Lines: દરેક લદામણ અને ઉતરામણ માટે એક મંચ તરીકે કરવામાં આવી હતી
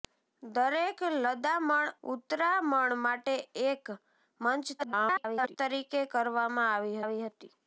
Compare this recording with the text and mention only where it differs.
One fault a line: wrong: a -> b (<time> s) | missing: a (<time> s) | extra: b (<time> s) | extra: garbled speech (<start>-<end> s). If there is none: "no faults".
missing: અને (1.9 s)
extra: garbled speech (4.8-5.6 s)
extra: આવી (7.0 s)